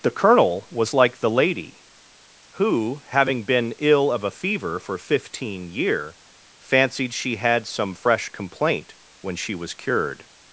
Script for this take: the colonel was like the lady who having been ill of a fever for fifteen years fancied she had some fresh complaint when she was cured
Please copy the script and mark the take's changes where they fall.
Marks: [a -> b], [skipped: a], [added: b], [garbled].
the colonel was like the lady who having been ill of a fever for fifteen [years -> year] fancied she had some fresh complaint when she was cured